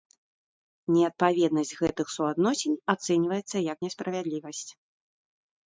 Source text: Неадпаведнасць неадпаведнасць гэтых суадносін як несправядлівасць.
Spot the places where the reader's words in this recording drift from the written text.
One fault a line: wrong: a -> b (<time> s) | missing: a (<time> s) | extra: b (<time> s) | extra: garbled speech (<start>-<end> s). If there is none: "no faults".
missing: неадпаведнасць (1.7 s)
extra: ацэньваецца (3.0 s)